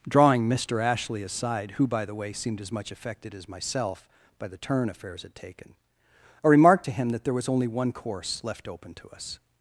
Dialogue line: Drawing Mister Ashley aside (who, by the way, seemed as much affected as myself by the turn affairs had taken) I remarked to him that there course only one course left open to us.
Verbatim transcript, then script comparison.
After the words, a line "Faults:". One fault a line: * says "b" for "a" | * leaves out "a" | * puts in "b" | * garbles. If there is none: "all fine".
Drawing Mister Ashley aside (who, by the way, seemed as much affected as myself by the turn affairs had taken) I remarked to him that there was only one course left open to us.
Faults:
* says "was" for "course"